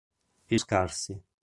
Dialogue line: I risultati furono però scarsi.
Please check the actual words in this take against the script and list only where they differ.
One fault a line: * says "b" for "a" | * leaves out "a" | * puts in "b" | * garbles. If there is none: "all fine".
* leaves out "risultati furono però"